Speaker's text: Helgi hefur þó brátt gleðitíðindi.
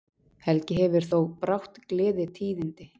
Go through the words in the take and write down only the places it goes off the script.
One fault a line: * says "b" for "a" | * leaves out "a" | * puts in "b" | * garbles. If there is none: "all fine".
all fine